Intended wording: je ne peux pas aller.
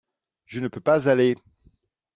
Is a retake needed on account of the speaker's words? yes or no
no